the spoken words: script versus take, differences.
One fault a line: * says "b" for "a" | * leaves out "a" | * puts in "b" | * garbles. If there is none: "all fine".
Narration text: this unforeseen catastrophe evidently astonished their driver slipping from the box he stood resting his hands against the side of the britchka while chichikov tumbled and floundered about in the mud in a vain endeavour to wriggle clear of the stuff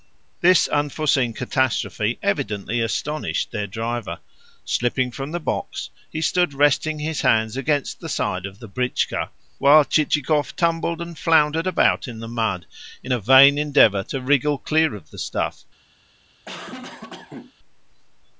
all fine